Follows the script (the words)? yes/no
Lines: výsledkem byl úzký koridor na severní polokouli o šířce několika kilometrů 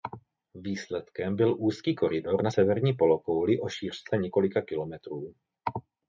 yes